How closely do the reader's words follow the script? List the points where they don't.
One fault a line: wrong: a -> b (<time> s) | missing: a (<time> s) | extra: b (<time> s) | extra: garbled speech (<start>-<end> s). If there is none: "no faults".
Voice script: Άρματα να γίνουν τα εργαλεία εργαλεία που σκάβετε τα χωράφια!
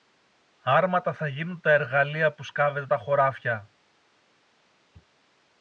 wrong: να -> θα (1.1 s)
missing: εργαλεία (2.3 s)